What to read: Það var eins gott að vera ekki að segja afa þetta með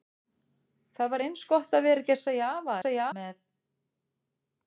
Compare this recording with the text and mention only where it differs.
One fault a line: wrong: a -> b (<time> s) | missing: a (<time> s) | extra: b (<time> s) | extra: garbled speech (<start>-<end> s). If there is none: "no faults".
wrong: þetta -> segja (2.8 s)